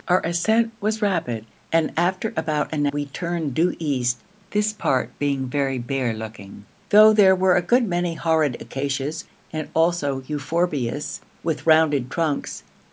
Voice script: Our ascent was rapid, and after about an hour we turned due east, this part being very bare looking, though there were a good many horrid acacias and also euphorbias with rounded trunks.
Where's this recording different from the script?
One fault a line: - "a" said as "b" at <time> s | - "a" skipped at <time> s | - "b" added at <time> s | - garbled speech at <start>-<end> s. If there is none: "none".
- "hour" skipped at 2.9 s